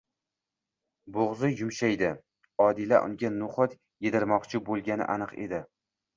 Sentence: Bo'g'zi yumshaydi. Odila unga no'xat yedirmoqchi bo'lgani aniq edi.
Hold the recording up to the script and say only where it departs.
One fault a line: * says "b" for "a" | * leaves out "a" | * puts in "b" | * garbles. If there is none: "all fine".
all fine